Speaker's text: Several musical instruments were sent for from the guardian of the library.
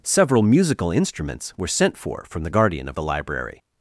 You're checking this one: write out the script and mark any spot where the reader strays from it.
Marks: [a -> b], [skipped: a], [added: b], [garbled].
Several musical instruments were sent for from the guardian of the library.